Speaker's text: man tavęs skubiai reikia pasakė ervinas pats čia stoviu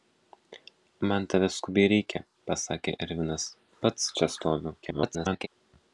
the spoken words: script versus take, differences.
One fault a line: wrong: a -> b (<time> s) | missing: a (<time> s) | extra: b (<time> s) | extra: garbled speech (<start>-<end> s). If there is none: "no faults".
extra: garbled speech (4.8-5.5 s)